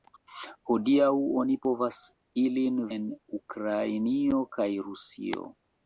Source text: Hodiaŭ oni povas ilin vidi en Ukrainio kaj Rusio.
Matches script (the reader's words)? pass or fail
fail